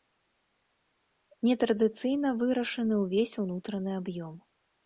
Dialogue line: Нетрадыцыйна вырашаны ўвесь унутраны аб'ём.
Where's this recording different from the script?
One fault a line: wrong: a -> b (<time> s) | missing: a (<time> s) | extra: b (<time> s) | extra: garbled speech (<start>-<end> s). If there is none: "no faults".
no faults